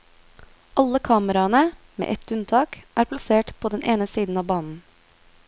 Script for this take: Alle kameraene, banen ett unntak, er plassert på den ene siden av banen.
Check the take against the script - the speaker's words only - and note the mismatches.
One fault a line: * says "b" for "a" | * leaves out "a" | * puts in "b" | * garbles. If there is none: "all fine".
* says "med" for "banen"